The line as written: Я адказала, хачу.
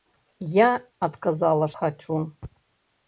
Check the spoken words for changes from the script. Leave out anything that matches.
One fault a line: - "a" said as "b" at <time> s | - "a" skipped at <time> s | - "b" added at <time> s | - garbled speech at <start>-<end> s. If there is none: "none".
none